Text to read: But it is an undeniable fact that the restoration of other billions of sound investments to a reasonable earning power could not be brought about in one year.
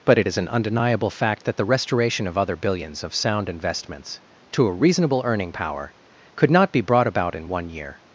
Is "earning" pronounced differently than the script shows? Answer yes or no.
no